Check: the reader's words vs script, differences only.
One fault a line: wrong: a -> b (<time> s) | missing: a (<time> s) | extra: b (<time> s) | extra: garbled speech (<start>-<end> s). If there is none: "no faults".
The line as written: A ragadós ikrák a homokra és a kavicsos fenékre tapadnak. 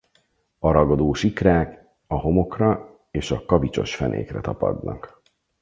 no faults